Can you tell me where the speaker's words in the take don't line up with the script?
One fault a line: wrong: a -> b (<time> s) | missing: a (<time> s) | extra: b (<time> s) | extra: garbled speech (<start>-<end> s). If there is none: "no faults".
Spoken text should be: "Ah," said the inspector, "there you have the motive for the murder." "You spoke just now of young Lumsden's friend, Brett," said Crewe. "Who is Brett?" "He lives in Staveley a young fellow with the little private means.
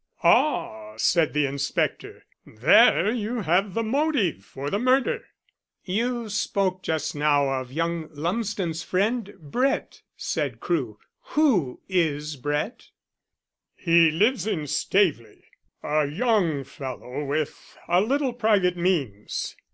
wrong: the -> a (17.9 s)